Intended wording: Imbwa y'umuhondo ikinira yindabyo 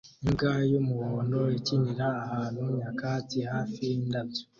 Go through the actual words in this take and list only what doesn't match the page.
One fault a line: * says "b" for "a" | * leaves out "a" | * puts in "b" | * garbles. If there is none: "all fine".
* puts in "ahantu nyakatsi hafi"